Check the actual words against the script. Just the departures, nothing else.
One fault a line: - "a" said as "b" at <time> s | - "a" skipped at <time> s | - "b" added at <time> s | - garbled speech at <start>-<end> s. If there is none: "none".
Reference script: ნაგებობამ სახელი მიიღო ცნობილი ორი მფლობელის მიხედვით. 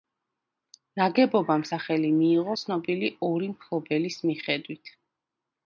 none